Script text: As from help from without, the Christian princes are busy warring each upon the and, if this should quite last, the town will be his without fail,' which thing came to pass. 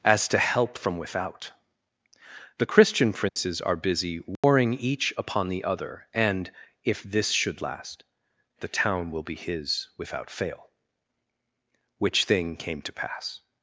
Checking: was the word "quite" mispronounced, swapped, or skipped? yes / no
yes